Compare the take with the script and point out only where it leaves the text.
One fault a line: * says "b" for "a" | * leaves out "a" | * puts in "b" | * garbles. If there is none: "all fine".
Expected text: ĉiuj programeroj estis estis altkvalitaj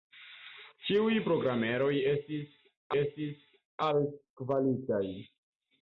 all fine